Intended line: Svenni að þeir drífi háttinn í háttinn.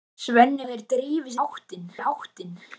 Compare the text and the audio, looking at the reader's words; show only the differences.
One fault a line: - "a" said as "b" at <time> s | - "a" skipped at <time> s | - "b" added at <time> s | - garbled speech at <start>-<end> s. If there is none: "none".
none